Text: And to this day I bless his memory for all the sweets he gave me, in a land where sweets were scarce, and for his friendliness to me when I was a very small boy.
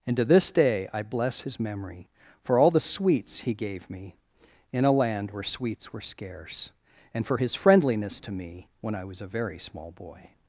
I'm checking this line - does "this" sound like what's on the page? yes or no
yes